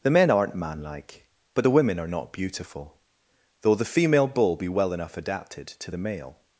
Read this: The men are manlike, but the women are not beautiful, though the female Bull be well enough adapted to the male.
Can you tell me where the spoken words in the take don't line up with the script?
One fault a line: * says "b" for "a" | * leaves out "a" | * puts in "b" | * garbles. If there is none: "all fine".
* says "aren't" for "are"